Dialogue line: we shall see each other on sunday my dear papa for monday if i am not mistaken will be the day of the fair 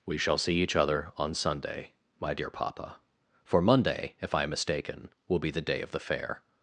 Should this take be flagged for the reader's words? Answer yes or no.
yes